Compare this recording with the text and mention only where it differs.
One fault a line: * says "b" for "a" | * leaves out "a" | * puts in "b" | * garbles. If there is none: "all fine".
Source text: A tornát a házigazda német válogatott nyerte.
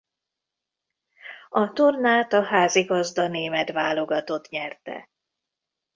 all fine